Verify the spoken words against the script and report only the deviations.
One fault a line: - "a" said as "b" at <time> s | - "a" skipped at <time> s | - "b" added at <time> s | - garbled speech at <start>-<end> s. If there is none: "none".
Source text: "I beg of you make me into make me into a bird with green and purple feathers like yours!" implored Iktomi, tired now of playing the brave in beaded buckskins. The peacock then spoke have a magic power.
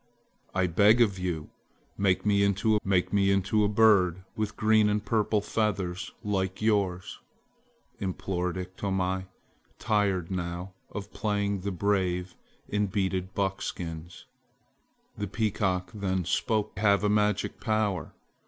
none